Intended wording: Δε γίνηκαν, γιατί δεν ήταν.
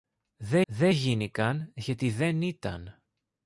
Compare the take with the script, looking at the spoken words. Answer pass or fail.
fail